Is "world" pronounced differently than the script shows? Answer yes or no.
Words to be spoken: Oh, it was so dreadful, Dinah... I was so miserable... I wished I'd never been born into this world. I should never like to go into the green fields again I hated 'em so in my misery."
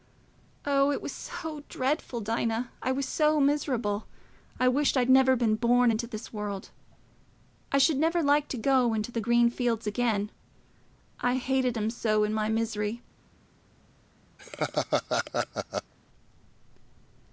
no